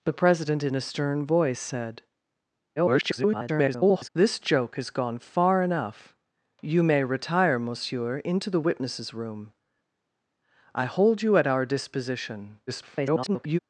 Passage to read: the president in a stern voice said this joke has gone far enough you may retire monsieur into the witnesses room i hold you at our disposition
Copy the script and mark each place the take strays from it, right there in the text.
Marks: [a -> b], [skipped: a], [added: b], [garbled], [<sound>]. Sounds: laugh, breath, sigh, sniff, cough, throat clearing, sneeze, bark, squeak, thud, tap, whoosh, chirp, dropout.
the president in a stern voice said [garbled] this joke has gone far enough you may retire monsieur into the witnesses room i hold you at our disposition [garbled]